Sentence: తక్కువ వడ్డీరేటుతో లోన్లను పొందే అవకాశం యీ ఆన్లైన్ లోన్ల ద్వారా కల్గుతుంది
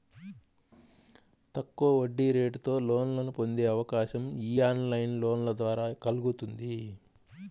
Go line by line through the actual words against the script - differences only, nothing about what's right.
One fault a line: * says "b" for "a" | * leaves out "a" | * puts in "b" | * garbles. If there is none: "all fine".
all fine